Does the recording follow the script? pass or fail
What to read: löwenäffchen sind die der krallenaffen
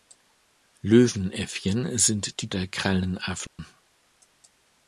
pass